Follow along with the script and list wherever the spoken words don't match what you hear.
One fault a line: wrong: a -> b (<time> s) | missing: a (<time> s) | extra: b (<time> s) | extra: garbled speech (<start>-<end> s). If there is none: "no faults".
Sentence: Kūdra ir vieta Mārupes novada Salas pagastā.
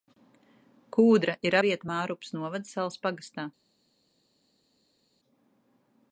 no faults